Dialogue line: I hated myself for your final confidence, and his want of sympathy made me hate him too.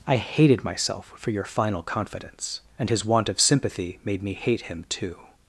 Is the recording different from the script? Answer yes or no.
no